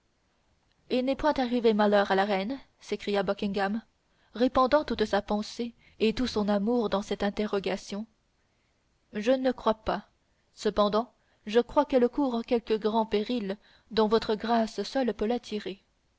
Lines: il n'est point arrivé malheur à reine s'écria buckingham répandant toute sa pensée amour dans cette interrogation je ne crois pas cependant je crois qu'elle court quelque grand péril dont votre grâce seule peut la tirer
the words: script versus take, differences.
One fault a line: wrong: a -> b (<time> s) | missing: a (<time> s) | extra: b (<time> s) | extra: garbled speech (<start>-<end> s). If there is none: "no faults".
extra: la (2.1 s)
extra: et tout son (6.0 s)